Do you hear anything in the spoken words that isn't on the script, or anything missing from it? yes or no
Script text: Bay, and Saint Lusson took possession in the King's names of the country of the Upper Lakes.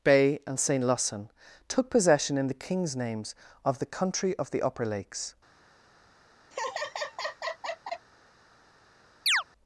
no